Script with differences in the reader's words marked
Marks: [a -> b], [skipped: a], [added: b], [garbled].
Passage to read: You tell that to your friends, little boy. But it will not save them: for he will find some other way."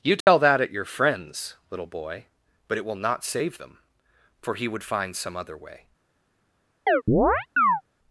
You tell that [to -> at] your friends, little boy. But it will not save them: for he [will -> would] find some other way."